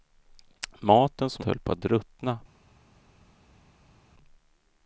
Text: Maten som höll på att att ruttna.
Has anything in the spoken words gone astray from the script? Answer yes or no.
no